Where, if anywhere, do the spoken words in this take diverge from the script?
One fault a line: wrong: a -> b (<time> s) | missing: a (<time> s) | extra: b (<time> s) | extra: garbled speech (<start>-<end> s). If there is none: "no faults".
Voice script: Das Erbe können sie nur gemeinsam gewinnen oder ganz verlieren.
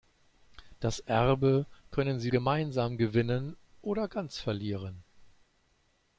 missing: nur (2.3 s)